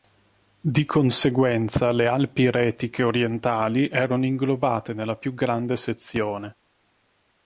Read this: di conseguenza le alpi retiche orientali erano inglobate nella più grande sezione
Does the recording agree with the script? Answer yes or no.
yes